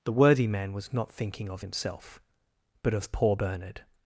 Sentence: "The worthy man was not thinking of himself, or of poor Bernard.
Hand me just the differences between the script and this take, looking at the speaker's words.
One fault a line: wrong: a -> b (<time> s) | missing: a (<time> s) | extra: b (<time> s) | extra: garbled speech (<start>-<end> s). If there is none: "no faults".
wrong: or -> but (2.8 s)